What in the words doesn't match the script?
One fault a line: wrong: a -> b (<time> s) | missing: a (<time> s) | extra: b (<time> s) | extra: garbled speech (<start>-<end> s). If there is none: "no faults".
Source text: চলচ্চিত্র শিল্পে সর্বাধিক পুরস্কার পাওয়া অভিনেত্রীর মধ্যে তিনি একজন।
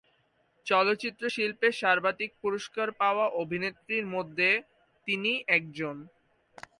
no faults